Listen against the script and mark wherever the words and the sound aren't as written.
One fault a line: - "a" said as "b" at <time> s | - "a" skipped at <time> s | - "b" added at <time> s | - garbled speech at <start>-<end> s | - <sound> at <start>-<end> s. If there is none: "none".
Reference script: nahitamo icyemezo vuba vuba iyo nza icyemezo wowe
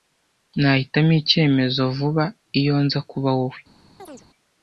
- "vuba" skipped at 2.2 s
- "icyemezo" said as "kuba" at 3.1 s
- chirp at 4.0-4.3 s